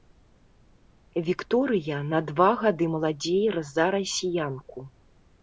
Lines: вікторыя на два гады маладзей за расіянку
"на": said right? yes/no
yes